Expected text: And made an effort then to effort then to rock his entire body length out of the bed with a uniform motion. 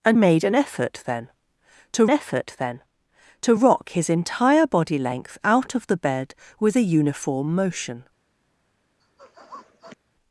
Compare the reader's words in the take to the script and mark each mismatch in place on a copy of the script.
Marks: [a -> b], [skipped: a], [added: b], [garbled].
And made an effort then to effort then to rock his entire body length out of the bed with a uniform motion.